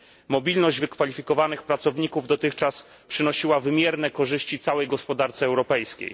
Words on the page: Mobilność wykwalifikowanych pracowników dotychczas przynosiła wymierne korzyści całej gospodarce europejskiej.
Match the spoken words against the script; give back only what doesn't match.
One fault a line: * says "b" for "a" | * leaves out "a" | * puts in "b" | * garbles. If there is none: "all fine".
all fine